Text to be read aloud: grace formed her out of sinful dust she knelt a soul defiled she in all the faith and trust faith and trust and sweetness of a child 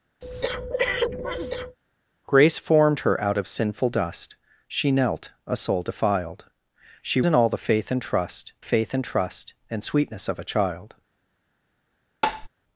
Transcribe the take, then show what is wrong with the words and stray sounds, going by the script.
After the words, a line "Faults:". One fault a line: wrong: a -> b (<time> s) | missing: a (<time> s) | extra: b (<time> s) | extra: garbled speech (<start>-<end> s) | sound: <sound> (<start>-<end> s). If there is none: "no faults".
grace formed her out of sinful dust she knelt a soul defiled she in all the faith and trust faith and trust and sweetness of a child
Faults:
sound: breath (0.2-1.8 s)
sound: tap (12.2-12.5 s)